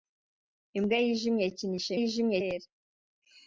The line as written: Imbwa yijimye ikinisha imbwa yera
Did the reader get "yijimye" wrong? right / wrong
right